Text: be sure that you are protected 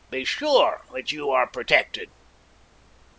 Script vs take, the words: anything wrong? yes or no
no